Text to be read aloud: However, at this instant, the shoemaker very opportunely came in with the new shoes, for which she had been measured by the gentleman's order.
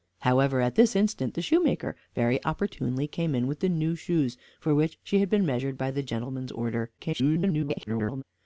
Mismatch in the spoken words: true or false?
true